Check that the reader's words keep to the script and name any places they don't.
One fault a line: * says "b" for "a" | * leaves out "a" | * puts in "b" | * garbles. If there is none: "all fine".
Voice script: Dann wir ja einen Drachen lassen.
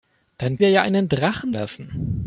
all fine